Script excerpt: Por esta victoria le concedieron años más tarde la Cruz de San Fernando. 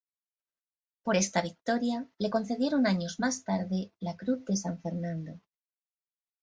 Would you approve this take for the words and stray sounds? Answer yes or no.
yes